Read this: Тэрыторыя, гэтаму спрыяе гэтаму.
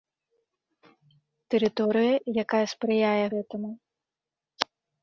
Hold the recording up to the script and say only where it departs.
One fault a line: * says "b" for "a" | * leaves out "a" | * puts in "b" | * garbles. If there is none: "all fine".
* says "якая" for "гэтаму"